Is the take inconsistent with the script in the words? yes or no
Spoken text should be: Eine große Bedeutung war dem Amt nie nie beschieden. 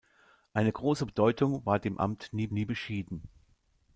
no